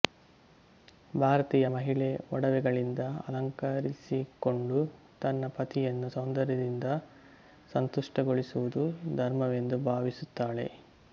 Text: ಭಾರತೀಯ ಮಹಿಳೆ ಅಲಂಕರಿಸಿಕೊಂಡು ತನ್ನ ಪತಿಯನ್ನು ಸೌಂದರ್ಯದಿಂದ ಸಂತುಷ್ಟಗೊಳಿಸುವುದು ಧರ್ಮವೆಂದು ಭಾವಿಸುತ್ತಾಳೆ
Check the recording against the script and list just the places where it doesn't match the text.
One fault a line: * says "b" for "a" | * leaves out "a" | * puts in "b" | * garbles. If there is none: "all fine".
* puts in "ಒಡವೆಗಳಿಂದ"